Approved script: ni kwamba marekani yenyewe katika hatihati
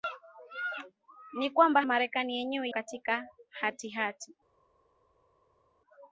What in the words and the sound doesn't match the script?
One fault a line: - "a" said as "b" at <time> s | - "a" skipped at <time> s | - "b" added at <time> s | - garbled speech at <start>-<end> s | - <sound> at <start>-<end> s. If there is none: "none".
none